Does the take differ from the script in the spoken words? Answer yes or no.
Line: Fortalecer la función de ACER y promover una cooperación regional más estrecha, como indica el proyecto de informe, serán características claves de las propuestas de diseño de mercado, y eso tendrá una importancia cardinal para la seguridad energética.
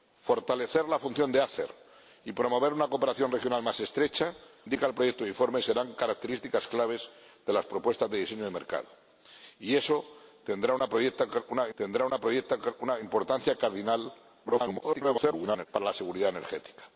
yes